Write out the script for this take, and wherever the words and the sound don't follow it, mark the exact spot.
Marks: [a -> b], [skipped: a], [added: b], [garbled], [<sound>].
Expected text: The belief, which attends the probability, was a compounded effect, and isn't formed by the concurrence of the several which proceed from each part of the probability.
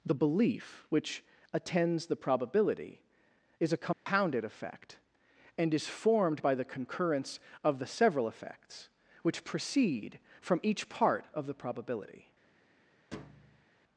The belief, which attends the probability, [was -> is] a compounded [dropout] effect, and [isn't -> is] formed by the concurrence of the several [added: effects] which proceed from each part of the probability. [thud]